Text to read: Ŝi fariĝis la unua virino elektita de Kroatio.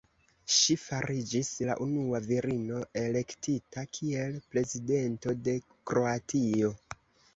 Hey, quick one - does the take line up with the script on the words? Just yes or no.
no